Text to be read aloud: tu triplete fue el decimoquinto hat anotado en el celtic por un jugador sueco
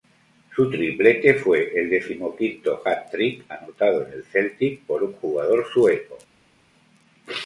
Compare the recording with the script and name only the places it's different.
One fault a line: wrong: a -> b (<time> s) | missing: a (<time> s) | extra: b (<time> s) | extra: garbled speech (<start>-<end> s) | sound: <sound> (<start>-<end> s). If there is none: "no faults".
wrong: tu -> su (0.6 s)
extra: trick (3.1 s)